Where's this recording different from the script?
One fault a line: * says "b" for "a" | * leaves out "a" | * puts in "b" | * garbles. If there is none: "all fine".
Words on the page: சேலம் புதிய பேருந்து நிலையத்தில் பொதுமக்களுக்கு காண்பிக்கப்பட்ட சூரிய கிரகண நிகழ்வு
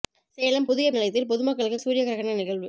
* leaves out "பேருந்து"
* leaves out "காண்பிக்கப்பட்ட"